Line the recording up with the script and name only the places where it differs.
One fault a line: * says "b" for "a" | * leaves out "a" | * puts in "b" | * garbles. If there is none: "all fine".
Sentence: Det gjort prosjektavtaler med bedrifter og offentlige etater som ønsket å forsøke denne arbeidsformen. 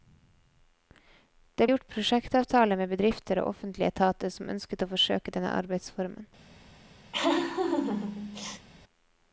all fine